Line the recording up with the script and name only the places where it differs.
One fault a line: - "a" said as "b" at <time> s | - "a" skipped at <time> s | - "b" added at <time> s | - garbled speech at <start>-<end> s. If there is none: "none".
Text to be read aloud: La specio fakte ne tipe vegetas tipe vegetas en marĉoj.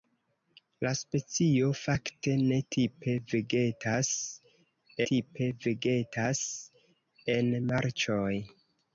none